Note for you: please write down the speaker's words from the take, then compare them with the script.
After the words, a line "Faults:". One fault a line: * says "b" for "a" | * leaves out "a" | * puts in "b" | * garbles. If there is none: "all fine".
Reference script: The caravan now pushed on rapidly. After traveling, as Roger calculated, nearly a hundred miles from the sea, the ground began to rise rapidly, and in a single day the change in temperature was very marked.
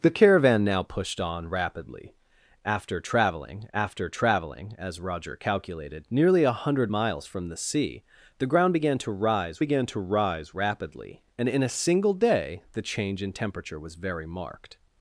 The caravan now pushed on rapidly. After traveling after traveling, as Roger calculated, nearly a hundred miles from the sea, the ground began to rise began to rise rapidly, and in a single day the change in temperature was very marked.
Faults:
* puts in "after traveling"
* puts in "began to rise"